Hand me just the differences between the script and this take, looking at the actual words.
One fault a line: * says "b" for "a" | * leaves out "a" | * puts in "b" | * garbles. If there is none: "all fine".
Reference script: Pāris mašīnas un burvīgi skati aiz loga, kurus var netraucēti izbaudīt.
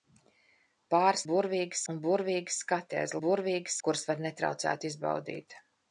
* says "burvīgi" for "mašīnas"
* says "burvīgi" for "loga"